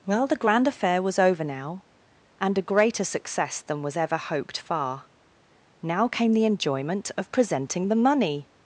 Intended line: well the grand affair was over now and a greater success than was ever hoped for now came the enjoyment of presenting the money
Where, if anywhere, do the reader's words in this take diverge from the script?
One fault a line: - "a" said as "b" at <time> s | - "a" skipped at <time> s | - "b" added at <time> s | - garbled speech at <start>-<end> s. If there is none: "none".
- "for" said as "far" at 4.6 s